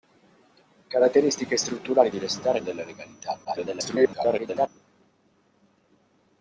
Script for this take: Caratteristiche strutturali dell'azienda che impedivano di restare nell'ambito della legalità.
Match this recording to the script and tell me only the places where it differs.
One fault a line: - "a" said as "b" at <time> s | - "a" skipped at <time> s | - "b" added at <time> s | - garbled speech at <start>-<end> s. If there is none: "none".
- "dell'azienda che impedivano" skipped at 2.1 s
- "nell'ambito" skipped at 2.6 s
- garbled speech at 3.4-4.7 s